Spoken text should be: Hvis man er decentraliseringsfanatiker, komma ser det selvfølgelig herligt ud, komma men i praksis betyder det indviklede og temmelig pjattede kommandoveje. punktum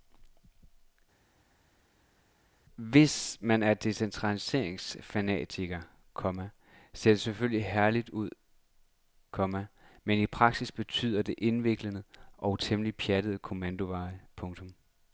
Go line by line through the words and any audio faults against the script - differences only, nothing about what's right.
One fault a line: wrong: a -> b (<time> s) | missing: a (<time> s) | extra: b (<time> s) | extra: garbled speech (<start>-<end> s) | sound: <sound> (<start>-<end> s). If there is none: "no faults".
no faults